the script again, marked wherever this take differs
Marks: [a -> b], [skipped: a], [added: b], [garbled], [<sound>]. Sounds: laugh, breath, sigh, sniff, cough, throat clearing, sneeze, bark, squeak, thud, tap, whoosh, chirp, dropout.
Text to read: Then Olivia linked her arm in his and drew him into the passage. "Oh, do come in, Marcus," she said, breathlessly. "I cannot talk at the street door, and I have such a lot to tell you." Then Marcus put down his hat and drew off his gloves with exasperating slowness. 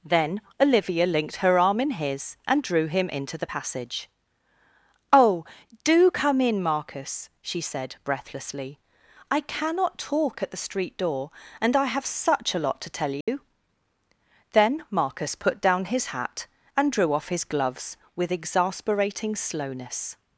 Then Olivia linked her arm in his and drew him into the passage. "Oh, do come in, Marcus," she said, breathlessly. "I cannot talk at the street door, and I have such a lot to tell you." [dropout] Then Marcus put down his hat and drew off his gloves with exasperating slowness.